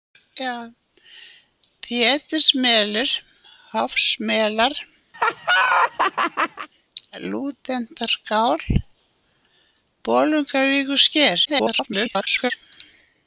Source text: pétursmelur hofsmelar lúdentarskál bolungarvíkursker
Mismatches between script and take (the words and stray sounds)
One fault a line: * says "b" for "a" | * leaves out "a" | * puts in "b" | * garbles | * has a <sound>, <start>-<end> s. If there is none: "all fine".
* has a laugh, 5.1-6.7 s
* garbles